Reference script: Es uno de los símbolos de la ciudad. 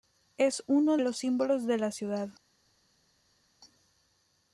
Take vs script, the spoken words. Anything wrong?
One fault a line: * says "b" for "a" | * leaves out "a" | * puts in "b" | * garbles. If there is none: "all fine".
* leaves out "de"